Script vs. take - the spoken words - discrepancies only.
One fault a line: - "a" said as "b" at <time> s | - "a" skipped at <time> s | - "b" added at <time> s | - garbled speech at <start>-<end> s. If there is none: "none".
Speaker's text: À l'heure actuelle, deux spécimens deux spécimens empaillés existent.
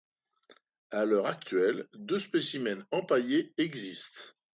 - "deux spécimens" skipped at 2.9 s